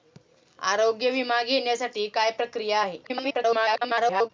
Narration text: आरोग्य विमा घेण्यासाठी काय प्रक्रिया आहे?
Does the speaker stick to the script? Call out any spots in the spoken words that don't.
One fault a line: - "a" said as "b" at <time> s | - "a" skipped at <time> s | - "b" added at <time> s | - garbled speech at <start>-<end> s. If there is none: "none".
- garbled speech at 3.0-4.3 s